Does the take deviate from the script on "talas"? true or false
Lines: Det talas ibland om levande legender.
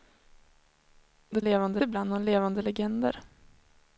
true